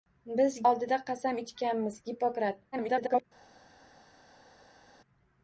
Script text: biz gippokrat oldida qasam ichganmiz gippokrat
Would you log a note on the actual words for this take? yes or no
yes